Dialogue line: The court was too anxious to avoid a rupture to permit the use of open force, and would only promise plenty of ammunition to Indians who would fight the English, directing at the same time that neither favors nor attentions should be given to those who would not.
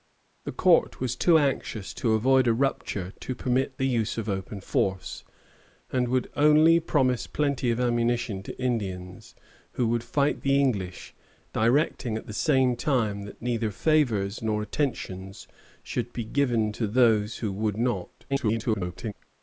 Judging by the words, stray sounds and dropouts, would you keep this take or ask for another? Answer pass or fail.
fail